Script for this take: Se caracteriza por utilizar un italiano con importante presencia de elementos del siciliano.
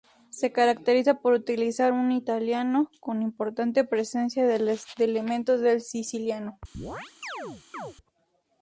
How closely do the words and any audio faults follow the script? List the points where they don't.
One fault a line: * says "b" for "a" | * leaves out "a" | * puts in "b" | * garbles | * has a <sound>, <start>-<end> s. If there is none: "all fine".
* has a chirp, 6.7-8.0 s